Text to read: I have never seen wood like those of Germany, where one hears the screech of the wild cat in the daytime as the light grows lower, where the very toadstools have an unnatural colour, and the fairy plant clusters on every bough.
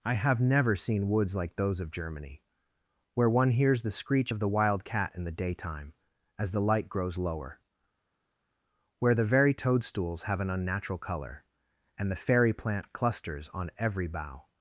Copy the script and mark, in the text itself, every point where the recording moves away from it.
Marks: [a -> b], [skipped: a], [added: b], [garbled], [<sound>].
I have never seen [wood -> woods] like those of Germany, where one hears the screech of the wild cat in the daytime as the light grows lower, where the very toadstools have an unnatural colour, and the fairy plant clusters on every bough.